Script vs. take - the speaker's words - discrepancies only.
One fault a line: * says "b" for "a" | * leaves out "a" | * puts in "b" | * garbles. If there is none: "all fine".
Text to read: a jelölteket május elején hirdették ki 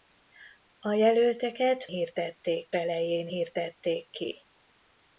* says "hirdették" for "május"